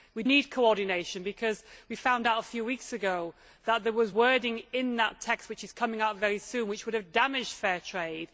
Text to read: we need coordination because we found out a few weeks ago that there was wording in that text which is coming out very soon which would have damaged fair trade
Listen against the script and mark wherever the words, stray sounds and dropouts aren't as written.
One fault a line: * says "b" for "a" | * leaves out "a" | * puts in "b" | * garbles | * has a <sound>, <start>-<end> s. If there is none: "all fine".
all fine